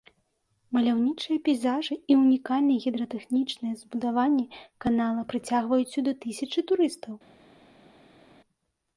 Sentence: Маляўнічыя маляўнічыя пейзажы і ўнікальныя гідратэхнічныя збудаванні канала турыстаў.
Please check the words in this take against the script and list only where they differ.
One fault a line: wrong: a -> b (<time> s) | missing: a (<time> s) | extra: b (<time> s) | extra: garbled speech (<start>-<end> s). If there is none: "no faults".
missing: маляўнічыя (1.4 s)
extra: прыцягваюць сюды тысячы (5.3 s)